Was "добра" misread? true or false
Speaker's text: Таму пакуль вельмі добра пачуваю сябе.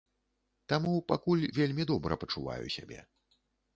false